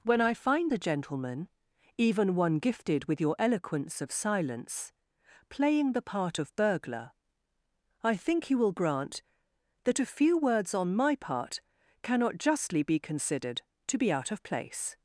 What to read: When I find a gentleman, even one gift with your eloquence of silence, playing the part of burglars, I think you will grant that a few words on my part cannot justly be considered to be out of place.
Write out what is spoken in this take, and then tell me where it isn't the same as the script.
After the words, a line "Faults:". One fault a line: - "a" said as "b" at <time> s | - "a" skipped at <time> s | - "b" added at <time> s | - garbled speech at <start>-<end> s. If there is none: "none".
When I find a gentleman, even one gifted with your eloquence of silence, playing the part of burglar, I think you will grant that a few words on my part cannot justly be considered to be out of place.
Faults:
- "gift" said as "gifted" at 2.6 s
- "burglars" said as "burglar" at 6.6 s